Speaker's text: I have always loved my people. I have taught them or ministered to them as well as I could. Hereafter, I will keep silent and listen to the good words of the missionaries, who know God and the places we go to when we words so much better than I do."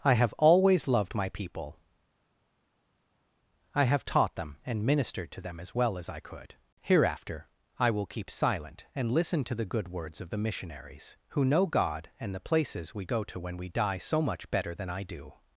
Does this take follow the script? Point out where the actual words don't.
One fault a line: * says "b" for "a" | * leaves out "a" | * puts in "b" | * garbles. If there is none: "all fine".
* says "and" for "or"
* says "die" for "words"